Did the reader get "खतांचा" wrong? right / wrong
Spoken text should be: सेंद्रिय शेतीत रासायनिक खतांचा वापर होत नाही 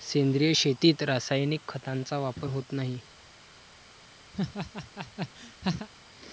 right